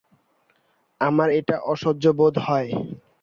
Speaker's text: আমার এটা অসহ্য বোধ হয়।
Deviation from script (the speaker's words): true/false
false